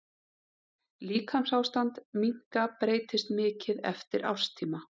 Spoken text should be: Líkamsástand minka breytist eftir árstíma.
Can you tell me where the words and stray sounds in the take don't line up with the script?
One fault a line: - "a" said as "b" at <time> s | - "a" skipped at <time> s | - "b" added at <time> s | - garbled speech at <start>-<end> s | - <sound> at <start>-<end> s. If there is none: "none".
- "mikið" added at 3.4 s